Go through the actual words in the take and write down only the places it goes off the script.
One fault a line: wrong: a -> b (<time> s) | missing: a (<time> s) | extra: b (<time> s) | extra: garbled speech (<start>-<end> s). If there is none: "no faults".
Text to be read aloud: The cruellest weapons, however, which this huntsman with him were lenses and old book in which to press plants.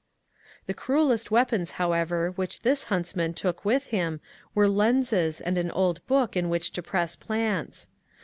extra: took (3.4 s)
extra: an (5.6 s)